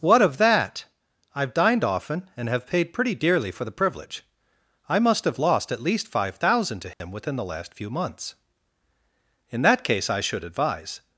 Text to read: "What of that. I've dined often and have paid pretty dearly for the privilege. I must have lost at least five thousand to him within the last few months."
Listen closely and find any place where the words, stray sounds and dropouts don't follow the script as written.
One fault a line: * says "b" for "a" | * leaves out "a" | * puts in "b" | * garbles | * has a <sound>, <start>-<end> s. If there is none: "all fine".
* has a dropout, 6.9-7.0 s
* puts in "In that case I should advise"